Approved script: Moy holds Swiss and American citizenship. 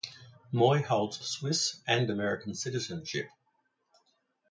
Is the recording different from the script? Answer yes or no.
no